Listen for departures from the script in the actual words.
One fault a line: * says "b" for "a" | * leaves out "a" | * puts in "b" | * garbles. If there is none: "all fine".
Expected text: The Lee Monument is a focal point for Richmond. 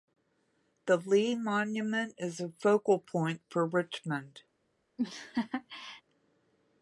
all fine